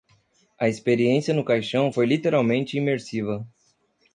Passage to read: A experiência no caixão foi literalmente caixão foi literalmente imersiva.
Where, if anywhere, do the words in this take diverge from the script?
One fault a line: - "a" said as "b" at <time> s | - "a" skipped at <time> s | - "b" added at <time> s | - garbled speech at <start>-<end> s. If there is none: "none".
- "caixão foi literalmente" skipped at 2.8 s